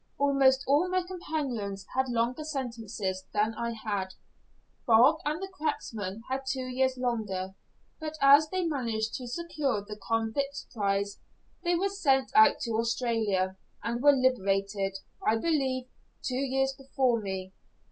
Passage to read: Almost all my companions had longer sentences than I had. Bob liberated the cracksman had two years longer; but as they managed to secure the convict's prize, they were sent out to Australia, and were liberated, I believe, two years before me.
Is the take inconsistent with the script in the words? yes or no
yes